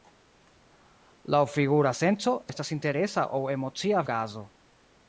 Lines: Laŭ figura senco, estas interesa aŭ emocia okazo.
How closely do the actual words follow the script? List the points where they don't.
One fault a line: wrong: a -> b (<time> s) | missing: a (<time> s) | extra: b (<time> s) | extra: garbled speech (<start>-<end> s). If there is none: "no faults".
no faults